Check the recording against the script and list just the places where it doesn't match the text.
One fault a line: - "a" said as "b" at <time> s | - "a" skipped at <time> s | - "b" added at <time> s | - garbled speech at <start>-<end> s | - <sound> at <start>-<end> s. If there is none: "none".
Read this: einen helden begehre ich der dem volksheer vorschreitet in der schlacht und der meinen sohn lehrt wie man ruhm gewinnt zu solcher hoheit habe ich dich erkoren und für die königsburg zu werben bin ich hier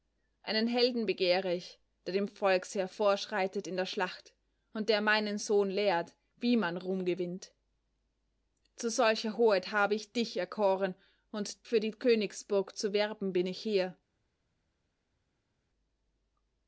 none